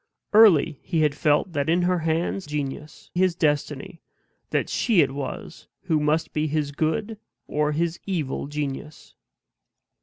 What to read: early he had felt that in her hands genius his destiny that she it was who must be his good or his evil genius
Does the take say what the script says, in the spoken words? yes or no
yes